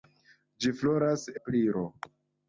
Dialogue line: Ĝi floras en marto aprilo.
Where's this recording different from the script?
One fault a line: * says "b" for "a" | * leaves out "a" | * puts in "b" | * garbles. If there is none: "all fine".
* leaves out "en marto"